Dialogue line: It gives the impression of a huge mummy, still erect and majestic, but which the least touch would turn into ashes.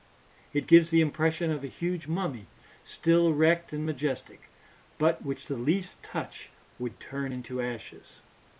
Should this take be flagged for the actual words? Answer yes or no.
no